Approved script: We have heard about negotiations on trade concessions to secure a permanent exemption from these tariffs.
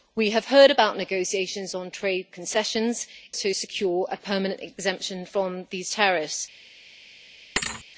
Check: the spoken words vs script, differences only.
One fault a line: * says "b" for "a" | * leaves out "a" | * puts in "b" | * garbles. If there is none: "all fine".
all fine